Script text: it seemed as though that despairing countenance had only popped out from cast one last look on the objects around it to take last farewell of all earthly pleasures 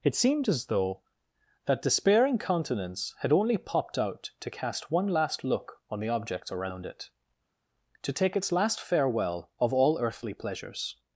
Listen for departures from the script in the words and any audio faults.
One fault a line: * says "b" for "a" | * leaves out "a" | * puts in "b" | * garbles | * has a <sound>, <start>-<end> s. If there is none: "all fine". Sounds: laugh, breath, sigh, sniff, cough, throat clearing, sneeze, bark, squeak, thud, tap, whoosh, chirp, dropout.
* says "to" for "from"
* puts in "its"